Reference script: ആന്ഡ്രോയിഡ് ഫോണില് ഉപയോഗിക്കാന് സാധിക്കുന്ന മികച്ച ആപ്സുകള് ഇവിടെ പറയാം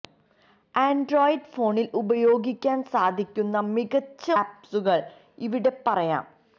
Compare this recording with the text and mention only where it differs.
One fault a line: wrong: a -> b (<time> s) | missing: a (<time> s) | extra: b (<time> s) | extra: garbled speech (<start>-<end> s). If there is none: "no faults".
no faults